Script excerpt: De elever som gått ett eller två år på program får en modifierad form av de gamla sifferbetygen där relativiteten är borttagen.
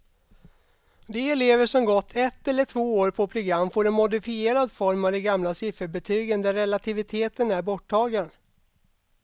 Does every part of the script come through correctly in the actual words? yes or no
yes